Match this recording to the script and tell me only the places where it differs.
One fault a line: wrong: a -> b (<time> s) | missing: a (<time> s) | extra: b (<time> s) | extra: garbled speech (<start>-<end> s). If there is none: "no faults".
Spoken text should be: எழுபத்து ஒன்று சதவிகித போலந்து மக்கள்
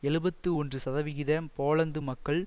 no faults